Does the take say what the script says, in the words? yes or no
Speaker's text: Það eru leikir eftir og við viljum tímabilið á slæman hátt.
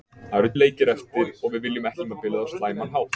yes